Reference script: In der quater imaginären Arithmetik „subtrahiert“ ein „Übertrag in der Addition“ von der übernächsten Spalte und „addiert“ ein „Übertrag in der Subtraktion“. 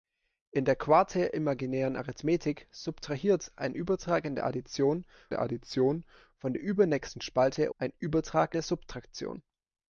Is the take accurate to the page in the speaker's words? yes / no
no